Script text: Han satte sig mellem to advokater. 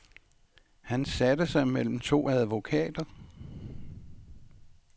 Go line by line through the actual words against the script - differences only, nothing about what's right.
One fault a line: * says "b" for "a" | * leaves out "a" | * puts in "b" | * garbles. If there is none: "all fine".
all fine